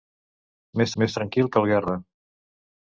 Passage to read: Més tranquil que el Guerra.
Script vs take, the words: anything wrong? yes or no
yes